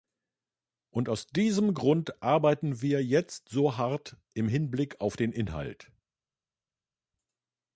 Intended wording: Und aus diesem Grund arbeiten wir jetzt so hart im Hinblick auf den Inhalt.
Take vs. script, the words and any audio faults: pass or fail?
pass